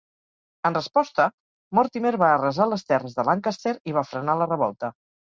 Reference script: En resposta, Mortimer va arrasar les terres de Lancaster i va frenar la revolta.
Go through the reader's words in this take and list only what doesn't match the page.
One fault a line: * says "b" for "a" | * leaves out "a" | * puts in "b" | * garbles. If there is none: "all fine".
all fine